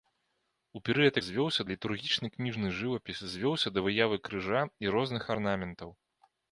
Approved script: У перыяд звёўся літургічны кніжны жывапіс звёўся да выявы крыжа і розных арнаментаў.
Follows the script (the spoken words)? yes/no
yes